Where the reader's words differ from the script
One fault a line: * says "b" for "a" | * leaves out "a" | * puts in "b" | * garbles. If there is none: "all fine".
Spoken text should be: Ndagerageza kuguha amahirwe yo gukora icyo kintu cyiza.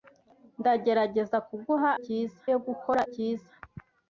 * says "cyiza" for "amahirwe"
* leaves out "icyo kintu"